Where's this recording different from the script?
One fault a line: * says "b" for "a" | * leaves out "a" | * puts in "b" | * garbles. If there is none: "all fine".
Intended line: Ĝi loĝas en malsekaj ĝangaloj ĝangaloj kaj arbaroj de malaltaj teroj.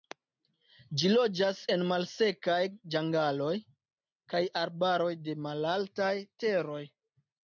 * leaves out "ĝangaloj"